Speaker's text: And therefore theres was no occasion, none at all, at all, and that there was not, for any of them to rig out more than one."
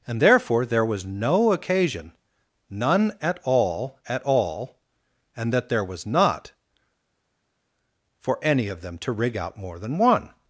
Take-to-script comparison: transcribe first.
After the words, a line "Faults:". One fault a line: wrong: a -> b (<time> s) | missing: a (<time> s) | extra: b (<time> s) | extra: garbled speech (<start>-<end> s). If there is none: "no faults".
And therefore there was no occasion, none at all, at all, and that there was not, for any of them to rig out more than one."
Faults:
wrong: theres -> there (0.7 s)